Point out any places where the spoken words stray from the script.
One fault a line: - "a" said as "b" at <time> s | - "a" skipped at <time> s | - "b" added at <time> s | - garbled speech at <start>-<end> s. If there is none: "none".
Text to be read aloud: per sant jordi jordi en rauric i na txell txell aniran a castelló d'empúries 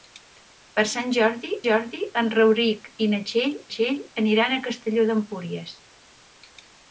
none